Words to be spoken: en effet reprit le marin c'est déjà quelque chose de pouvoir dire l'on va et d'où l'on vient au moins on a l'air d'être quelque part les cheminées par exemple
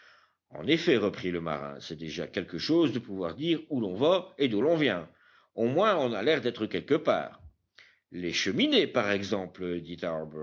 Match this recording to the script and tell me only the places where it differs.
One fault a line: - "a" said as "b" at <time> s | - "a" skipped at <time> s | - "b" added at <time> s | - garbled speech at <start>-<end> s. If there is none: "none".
- "où" added at 3.7 s